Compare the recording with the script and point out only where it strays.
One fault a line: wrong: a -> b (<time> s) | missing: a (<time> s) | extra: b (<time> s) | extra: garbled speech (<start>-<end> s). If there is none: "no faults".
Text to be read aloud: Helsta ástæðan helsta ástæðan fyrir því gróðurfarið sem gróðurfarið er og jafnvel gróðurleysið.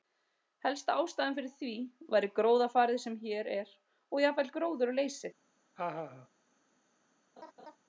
missing: helsta ástæðan (1.4 s)
extra: væri (2.1 s)
wrong: gróðurfarið -> hér (3.2 s)